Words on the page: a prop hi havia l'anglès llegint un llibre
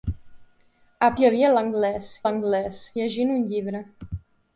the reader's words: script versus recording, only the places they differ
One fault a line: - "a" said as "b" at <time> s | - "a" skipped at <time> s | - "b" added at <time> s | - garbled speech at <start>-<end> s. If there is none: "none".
- "prop" skipped at 1.1 s
- "l'anglès" added at 2.2 s